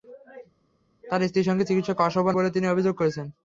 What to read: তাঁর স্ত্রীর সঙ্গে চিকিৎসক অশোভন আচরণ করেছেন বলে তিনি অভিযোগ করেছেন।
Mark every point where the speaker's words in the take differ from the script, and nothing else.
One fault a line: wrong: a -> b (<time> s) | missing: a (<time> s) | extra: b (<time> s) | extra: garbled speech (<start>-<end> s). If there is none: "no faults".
missing: আচরণ করেছেন (2.3 s)